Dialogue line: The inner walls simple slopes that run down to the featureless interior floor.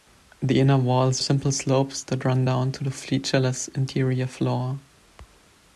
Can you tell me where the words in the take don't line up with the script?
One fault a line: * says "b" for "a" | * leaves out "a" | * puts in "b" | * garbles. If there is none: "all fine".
all fine